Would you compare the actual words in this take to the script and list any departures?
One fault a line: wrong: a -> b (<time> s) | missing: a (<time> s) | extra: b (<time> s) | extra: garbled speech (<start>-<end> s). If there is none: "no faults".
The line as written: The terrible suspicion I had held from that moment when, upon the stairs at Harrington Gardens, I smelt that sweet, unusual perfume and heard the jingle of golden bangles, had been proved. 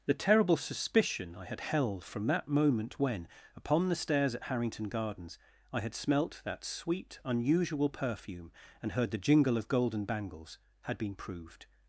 extra: had (5.8 s)